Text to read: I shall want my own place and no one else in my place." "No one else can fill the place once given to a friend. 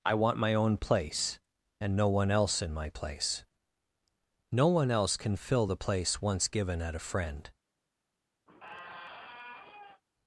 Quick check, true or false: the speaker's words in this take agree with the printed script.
false